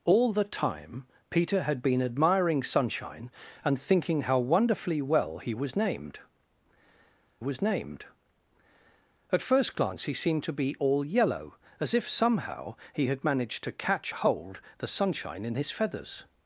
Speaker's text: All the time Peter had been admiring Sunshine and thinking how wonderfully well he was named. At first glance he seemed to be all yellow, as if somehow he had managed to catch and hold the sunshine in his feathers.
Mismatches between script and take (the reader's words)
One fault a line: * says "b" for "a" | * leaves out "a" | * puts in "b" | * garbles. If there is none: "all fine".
* puts in "was named"
* leaves out "and"